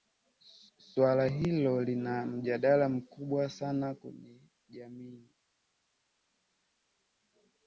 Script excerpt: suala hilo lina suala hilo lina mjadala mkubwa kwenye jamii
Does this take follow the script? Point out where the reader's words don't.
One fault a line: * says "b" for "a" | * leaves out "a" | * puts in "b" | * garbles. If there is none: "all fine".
* leaves out "suala hilo lina"
* puts in "sana"